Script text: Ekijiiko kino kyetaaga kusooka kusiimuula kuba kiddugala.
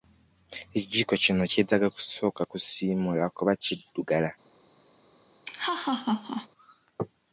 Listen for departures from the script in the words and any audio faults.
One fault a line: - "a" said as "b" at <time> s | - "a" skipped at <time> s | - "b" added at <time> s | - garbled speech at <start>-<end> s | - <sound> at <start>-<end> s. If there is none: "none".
- laugh at 5.4-6.5 s